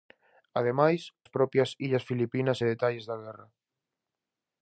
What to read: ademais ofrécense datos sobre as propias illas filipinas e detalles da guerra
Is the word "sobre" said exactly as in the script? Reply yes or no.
no